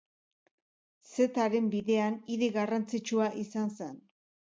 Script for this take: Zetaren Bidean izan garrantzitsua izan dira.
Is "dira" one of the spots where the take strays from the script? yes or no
yes